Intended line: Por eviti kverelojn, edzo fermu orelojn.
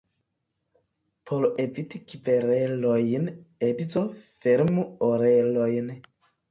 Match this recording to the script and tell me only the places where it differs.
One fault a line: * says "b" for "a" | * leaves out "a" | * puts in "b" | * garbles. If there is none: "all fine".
all fine